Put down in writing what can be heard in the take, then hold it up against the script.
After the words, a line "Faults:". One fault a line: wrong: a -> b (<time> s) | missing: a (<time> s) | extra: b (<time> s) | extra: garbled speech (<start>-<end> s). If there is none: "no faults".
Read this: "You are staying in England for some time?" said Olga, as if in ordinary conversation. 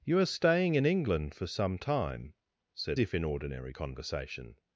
"You are staying in England for some time?" said If in ordinary conversation.
Faults:
missing: Olga as (3.0 s)